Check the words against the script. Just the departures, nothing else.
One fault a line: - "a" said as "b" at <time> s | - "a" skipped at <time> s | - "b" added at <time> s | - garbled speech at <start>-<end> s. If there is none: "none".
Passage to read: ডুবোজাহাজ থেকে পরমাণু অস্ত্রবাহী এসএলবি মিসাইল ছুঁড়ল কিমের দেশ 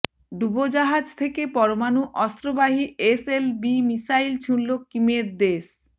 none